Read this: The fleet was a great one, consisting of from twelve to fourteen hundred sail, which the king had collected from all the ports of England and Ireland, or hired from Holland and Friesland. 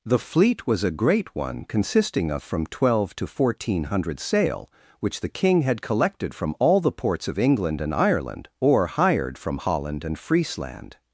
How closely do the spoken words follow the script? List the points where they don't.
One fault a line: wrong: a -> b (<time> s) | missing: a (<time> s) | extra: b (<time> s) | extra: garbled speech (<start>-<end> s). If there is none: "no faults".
no faults